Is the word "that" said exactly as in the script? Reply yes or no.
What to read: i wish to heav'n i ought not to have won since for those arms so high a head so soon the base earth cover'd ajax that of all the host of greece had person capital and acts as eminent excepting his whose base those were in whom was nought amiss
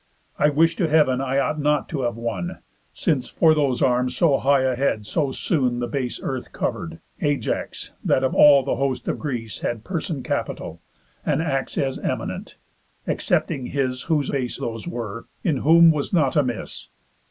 yes